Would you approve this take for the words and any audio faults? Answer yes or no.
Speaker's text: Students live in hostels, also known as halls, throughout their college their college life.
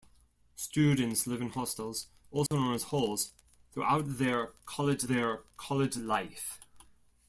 no